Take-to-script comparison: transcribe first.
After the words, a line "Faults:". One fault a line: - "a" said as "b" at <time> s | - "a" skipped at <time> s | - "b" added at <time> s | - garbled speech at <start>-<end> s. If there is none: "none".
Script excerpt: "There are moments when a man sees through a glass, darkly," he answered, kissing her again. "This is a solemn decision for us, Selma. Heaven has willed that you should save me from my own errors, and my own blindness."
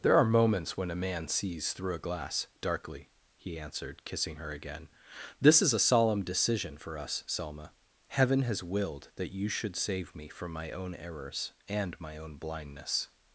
"There are moments when a man sees through a glass, darkly," he answered, kissing her again. "This is a solemn decision for us, Selma. Heaven has willed that you should save me from my own errors, and my own blindness."
Faults:
none